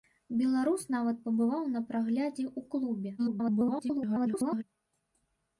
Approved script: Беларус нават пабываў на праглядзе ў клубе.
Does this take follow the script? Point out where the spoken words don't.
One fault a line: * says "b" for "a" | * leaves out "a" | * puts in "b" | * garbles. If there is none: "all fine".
* garbles